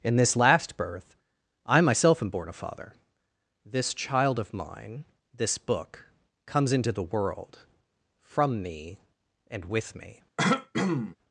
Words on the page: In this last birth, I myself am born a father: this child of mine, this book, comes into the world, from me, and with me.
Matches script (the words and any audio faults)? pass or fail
fail